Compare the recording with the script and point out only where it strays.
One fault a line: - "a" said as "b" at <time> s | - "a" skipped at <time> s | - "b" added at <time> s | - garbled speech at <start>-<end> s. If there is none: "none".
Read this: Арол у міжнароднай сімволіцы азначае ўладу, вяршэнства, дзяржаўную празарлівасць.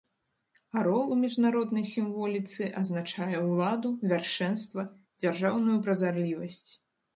none